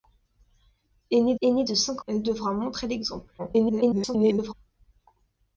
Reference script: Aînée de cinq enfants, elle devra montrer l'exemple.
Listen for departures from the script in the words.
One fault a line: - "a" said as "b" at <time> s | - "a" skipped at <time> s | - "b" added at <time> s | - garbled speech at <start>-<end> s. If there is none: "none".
- "aînée" added at 1.4 s
- "enfants" skipped at 2.0 s
- garbled speech at 3.4-4.5 s